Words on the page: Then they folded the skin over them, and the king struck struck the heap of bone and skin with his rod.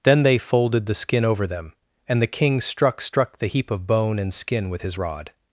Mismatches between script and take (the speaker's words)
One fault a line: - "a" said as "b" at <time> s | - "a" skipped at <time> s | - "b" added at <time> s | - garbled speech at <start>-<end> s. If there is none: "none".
none